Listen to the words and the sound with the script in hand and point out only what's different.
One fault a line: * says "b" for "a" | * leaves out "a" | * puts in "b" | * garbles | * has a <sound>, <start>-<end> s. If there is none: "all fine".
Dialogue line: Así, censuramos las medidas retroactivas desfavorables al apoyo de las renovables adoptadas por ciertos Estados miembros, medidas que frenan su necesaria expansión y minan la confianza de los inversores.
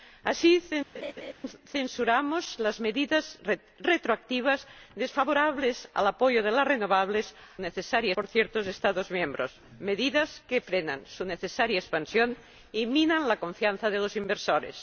* has a laugh, 0.9-1.3 s
* says "necesaria" for "adoptadas"